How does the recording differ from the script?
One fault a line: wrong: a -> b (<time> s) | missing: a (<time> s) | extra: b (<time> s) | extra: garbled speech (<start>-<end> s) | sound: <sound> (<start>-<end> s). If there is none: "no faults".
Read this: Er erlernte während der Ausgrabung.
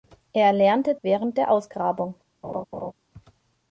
sound: laugh (2.4-2.9 s)